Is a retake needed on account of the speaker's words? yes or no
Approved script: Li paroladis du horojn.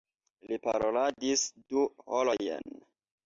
no